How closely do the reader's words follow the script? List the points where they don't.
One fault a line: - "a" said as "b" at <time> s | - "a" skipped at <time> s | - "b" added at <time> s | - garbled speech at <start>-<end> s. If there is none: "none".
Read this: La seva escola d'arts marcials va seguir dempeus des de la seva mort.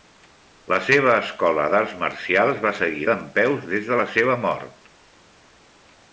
none